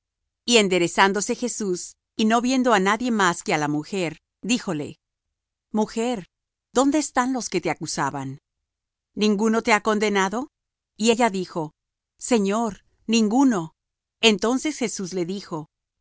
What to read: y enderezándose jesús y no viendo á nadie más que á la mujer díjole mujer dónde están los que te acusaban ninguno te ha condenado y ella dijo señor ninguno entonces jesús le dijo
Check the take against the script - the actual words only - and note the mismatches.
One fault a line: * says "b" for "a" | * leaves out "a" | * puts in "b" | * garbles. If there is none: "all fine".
all fine